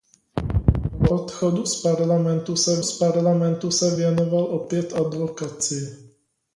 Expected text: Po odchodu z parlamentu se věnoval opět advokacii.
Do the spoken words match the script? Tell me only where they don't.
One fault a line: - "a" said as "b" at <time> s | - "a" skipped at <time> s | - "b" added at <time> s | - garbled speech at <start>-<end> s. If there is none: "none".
- "z parlamentu se" added at 2.8 s